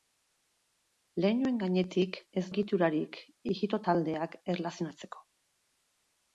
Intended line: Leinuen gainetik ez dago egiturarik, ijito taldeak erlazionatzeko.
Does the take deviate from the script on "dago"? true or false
true